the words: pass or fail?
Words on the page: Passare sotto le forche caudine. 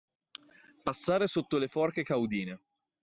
pass